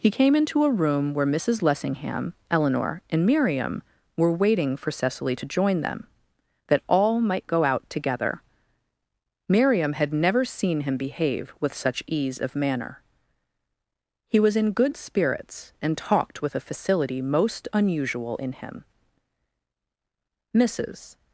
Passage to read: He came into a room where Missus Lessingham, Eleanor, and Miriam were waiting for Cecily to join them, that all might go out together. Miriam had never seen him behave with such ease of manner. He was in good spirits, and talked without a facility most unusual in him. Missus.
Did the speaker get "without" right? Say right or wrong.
wrong